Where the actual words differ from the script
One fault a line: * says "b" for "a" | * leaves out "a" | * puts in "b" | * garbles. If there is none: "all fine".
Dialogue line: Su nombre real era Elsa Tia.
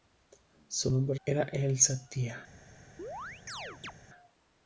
* leaves out "real"